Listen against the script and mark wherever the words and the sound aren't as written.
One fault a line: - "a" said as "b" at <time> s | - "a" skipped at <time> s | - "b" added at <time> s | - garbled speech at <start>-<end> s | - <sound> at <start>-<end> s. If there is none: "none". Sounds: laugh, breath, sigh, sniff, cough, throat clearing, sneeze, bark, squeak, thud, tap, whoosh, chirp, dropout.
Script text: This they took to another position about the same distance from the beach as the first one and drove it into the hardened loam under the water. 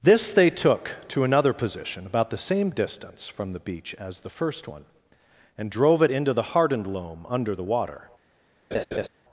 - laugh at 8.7-9.1 s